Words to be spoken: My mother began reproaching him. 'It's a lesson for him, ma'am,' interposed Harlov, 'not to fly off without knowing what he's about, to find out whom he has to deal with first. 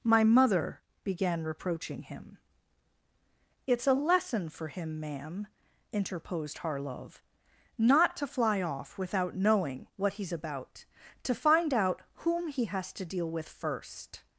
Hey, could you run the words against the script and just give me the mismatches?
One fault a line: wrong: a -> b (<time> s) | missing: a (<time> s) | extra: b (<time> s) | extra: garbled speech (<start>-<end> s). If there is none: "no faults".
no faults